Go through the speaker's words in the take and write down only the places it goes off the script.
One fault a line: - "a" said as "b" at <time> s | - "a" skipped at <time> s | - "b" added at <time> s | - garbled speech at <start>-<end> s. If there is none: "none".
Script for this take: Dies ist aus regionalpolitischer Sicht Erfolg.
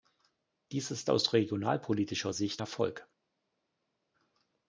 none